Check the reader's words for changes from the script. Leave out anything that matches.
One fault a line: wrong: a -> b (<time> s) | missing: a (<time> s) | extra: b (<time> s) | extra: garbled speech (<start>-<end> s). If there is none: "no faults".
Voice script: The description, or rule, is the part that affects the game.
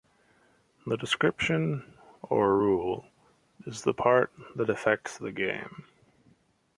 no faults